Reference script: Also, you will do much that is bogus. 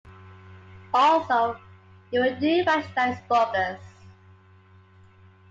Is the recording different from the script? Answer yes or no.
no